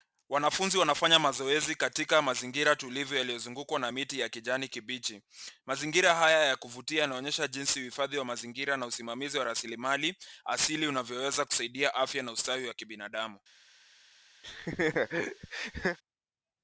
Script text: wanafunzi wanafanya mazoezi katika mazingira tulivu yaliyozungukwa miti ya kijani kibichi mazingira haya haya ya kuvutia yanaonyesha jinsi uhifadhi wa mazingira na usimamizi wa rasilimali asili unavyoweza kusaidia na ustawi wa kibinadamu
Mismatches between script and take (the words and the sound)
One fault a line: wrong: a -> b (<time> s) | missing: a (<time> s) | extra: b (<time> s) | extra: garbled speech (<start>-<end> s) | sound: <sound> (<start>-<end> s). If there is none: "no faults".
extra: na (3.8 s)
missing: haya (6.4 s)
extra: afya (11.9 s)
sound: laugh (14.4-16.0 s)